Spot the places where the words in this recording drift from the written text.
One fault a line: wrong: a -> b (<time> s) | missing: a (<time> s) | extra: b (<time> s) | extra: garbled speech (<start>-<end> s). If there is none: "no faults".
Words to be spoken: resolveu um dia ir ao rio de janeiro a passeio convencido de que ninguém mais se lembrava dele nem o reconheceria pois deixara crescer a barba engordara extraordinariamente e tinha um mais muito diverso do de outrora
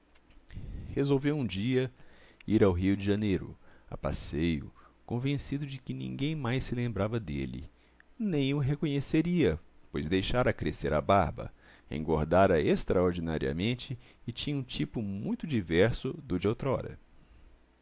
wrong: mais -> tipo (14.6 s)